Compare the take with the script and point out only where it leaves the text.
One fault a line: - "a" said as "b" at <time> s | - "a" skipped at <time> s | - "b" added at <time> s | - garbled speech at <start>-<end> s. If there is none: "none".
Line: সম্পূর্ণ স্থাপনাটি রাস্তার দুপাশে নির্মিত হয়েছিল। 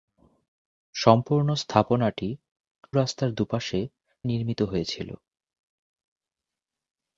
none